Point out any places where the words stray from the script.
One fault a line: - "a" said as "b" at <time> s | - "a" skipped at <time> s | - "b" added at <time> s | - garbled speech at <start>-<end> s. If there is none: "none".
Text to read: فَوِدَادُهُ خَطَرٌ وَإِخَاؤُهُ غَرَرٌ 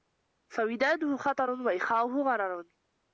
none